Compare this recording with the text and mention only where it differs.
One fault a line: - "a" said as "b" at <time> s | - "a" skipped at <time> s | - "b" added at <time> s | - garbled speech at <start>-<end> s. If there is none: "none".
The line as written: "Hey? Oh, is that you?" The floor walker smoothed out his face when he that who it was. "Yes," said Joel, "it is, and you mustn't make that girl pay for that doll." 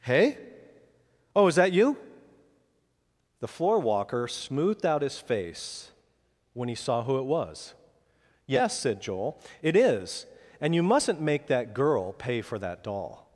- "that" said as "saw" at 6.8 s